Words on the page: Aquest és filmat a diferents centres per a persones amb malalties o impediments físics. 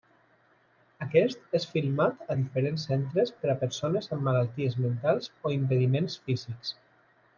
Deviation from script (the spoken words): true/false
true